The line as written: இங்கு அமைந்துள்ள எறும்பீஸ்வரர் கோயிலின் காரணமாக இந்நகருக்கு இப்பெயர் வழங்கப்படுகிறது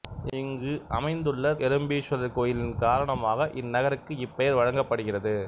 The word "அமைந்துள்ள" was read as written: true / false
true